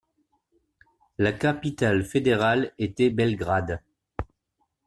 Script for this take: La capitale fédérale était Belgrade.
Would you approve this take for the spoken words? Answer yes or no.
yes